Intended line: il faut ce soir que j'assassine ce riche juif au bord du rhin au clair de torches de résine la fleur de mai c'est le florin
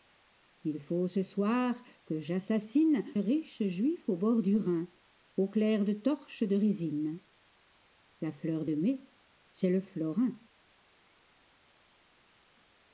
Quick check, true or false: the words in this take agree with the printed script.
false